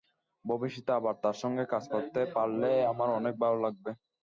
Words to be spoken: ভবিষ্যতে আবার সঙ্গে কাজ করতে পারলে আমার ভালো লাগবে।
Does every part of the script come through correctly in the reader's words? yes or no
no